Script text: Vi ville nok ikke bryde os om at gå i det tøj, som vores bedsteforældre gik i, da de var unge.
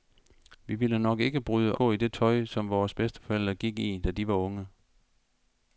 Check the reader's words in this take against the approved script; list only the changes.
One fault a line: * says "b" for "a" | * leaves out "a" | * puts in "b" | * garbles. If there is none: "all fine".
* leaves out "os om at"